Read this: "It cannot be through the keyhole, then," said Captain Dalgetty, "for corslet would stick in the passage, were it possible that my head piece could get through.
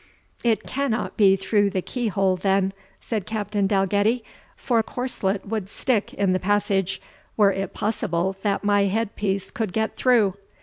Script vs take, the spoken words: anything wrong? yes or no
no